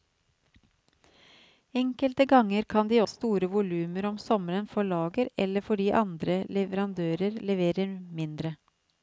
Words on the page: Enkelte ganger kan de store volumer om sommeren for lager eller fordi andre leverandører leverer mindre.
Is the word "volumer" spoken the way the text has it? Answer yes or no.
yes